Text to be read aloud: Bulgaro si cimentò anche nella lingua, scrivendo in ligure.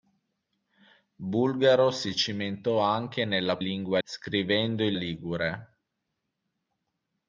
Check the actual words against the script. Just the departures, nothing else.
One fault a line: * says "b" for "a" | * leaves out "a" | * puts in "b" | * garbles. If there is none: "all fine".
all fine